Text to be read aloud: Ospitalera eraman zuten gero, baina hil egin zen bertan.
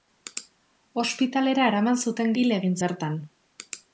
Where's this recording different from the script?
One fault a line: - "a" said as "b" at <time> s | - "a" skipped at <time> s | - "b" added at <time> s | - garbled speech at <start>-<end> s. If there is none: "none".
- "gero baina" skipped at 2.3 s
- "zen" skipped at 2.8 s